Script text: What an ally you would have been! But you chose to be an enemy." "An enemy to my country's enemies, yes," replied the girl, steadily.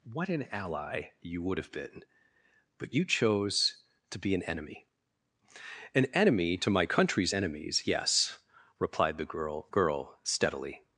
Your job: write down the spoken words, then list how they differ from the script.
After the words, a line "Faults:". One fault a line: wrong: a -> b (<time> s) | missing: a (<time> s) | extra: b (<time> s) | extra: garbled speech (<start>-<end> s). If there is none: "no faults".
What an ally you would have been! But you chose to be an enemy." "An enemy to my country's enemies, yes," replied the girl girl, steadily.
Faults:
extra: girl (9.7 s)